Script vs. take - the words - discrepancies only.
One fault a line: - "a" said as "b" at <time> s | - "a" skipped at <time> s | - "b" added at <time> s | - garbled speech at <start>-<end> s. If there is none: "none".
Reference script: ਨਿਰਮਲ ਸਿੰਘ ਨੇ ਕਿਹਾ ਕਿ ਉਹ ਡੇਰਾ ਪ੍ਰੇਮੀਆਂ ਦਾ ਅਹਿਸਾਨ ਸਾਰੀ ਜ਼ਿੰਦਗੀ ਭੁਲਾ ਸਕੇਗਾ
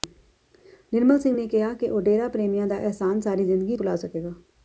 none